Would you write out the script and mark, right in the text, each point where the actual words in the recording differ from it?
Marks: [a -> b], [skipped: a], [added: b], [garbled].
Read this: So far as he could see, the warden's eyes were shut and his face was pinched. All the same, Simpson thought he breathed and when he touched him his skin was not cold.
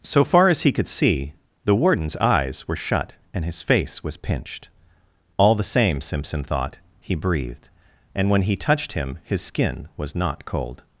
So far as he could see, the warden's eyes were shut and his face was pinched. All the same, Simpson thought he breathed and when he touched him his skin was not cold.